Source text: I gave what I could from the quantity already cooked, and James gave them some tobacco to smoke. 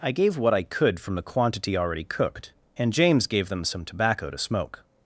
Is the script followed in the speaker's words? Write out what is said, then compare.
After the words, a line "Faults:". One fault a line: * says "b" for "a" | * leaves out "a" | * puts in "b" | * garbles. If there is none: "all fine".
I gave what I could from the quantity already cooked, and James gave them some tobacco to smoke.
Faults:
all fine